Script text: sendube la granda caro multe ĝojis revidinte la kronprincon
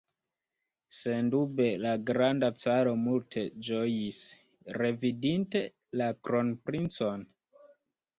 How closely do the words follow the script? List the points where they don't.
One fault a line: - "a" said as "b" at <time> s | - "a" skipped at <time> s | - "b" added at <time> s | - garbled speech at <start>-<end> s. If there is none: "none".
none